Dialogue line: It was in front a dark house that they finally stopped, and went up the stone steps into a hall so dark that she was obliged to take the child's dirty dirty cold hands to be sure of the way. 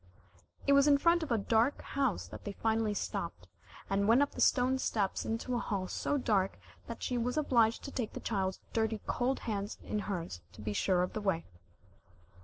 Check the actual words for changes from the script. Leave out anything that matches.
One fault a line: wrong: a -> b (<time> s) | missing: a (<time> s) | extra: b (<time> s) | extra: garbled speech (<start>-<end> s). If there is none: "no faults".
extra: of (1.2 s)
missing: dirty (9.0 s)
extra: in hers (9.8 s)